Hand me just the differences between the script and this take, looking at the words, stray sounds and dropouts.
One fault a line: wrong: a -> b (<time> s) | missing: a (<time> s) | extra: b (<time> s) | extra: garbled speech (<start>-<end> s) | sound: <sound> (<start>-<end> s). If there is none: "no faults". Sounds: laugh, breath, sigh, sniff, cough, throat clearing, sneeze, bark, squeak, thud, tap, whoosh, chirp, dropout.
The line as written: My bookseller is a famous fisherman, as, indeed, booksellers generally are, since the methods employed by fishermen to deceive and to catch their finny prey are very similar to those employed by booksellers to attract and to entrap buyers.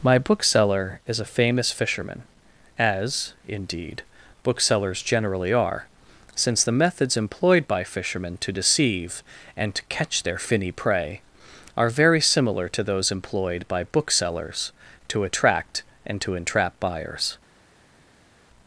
no faults